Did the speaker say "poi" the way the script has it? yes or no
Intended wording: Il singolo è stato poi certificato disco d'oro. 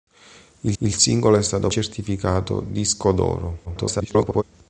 no